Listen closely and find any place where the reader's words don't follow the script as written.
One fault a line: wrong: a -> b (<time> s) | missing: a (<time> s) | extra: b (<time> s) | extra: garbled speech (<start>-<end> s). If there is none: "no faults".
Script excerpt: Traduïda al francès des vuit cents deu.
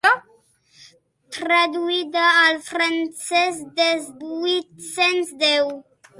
no faults